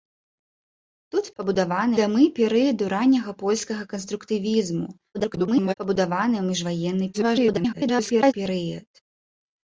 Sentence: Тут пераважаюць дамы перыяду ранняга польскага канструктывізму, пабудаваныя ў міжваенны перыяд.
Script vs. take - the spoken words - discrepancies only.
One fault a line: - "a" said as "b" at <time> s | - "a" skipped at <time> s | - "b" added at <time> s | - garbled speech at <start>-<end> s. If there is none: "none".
- "пераважаюць" said as "пабудаваныя" at 1.4 s
- garbled speech at 5.1-5.7 s
- garbled speech at 7.1-8.3 s